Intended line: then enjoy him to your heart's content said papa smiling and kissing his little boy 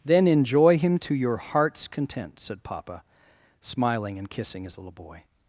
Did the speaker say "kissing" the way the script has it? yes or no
yes